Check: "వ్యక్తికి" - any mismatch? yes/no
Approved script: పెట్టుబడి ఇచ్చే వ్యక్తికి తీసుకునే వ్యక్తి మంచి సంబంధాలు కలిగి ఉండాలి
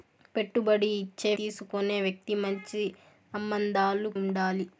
yes